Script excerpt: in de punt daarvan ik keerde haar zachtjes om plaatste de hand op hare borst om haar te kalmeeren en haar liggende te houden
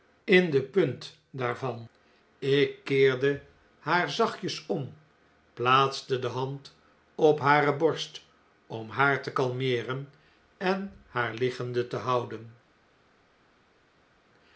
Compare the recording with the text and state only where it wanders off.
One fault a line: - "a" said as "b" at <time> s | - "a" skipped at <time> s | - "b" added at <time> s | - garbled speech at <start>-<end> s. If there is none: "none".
none